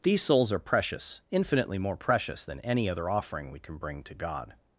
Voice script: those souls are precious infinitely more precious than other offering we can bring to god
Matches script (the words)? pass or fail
fail